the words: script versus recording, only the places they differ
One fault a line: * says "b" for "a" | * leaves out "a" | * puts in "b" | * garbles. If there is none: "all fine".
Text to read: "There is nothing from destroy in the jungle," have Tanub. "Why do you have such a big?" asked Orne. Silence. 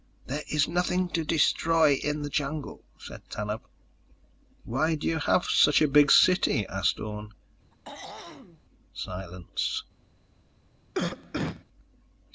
* says "to" for "from"
* says "said" for "have"
* puts in "city"